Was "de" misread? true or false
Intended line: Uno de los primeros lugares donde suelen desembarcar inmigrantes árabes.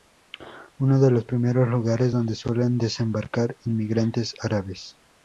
false